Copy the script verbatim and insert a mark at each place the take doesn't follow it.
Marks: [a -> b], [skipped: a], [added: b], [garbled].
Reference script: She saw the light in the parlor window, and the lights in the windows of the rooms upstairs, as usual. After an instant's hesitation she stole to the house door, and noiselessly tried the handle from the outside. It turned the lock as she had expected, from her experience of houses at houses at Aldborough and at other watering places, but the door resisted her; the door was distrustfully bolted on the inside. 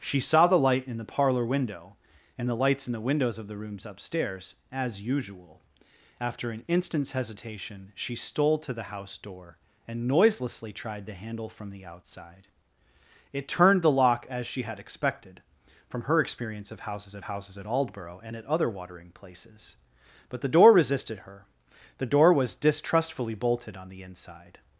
She saw the light in the parlor window, and the lights in the windows of the rooms upstairs, as usual. After an instant's hesitation she stole to the house door, and noiselessly tried the handle from the outside. It turned the lock as she had expected, from her experience of houses at houses at Aldborough and at other watering places, but the door resisted her; the door was distrustfully bolted on the inside.